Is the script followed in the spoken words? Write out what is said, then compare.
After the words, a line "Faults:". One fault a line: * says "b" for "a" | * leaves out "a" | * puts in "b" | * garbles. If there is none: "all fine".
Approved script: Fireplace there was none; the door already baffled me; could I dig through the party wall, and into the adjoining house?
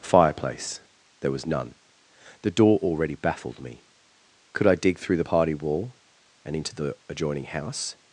Fireplace there was none; the door already baffled me; could I dig through the party wall, and into the adjoining house?
Faults:
all fine